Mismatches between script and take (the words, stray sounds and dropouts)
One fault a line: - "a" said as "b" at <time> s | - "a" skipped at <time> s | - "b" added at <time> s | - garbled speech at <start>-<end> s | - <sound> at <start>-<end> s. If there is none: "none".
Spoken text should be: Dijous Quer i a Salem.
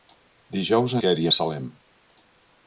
none